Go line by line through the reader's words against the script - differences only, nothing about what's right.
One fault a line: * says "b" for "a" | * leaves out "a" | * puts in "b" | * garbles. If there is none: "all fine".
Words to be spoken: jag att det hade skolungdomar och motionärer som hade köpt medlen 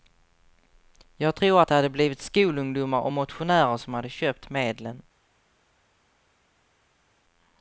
* puts in "tror"
* puts in "blivit"